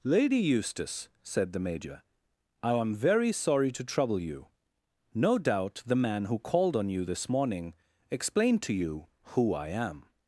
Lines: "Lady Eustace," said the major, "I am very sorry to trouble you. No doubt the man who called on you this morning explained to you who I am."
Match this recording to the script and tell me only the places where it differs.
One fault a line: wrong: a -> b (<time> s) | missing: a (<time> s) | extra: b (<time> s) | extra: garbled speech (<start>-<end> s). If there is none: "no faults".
no faults